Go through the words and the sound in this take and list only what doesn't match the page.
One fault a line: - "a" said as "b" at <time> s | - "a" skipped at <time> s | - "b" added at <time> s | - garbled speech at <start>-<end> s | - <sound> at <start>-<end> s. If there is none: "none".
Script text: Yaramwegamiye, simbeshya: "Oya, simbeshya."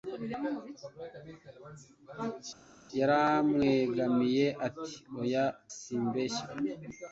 - "simbeshya" said as "ati" at 4.7 s